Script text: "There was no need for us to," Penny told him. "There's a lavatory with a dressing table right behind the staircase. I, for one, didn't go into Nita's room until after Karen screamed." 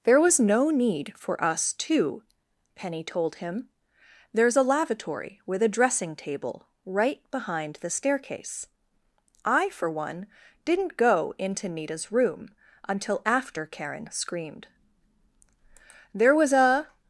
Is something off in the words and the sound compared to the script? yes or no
yes